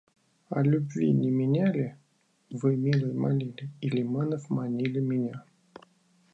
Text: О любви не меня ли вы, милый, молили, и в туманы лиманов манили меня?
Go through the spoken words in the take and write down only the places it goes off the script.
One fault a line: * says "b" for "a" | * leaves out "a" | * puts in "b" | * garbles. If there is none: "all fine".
* leaves out "в туманы"